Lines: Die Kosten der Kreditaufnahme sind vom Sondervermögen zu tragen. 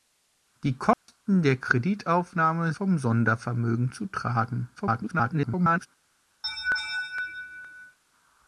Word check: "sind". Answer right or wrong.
wrong